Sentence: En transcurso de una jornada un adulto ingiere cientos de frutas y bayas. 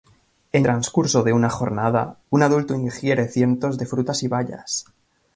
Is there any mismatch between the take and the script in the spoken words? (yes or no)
no